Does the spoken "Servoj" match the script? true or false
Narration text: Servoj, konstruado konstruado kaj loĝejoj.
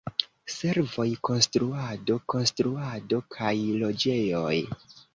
true